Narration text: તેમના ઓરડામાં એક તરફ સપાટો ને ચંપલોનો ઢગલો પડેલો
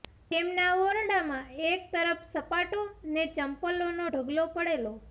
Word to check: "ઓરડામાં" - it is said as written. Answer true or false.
true